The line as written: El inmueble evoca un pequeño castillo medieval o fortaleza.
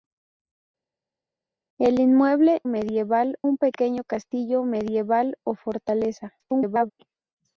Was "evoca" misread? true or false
true